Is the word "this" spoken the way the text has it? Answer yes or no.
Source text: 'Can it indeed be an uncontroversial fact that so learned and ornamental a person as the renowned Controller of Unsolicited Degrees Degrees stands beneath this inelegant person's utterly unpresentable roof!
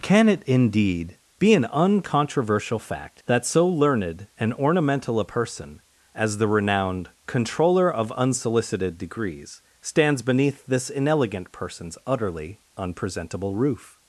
yes